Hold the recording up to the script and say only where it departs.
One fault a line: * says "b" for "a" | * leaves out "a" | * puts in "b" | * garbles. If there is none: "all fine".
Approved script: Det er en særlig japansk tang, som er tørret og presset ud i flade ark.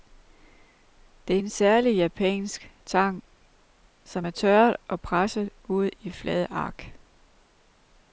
all fine